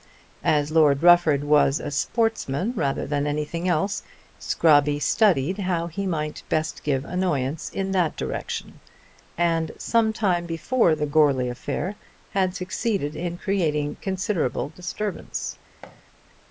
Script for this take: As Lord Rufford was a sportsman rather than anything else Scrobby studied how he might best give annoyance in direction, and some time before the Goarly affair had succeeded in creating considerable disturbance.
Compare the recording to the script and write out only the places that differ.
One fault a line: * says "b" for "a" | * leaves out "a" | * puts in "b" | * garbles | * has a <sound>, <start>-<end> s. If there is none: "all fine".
* puts in "that"
* has a thud, 15.8-16.0 s